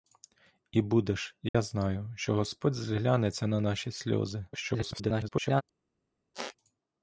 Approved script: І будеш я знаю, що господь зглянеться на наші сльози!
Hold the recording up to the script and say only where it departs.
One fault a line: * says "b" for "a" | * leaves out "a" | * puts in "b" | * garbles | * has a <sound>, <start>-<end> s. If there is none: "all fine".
* has a dropout, 1.5-1.5 s
* garbles
* has a squeak, 6.3-6.6 s